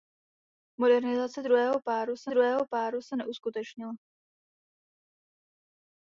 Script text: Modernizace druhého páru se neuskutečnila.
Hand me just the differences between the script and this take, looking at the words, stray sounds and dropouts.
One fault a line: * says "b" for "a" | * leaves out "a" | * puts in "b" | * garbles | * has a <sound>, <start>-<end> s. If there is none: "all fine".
* puts in "druhého páru se"